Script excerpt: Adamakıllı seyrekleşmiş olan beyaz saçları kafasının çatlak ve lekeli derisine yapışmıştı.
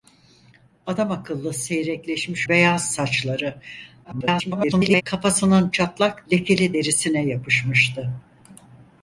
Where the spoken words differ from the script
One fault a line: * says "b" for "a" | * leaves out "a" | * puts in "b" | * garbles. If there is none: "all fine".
* leaves out "olan"
* garbles
* leaves out "ve"